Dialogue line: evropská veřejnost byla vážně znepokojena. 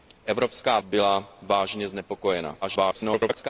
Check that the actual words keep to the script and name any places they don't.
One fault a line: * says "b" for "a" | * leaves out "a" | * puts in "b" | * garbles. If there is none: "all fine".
* leaves out "veřejnost"
* garbles